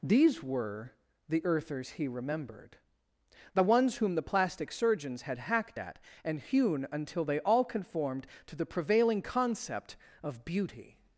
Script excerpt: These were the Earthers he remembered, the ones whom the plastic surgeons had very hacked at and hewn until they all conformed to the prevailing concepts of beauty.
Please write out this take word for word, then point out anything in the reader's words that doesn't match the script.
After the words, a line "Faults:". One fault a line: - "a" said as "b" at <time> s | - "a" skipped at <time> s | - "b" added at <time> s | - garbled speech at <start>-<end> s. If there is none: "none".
These were the Earthers he remembered, the ones whom the plastic surgeons had hacked at and hewn until they all conformed to the prevailing concept of beauty.
Faults:
- "very" skipped at 5.4 s
- "concepts" said as "concept" at 9.2 s